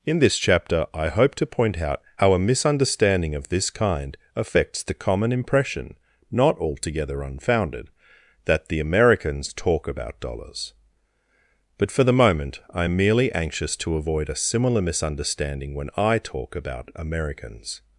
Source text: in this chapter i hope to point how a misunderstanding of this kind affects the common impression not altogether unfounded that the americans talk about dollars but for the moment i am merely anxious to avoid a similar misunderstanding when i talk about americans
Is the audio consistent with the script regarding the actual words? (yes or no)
no